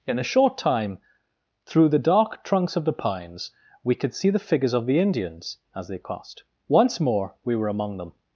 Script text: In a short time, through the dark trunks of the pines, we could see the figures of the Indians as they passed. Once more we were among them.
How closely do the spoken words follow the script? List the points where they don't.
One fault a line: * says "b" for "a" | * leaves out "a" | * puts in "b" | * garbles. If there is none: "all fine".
* says "crossed" for "passed"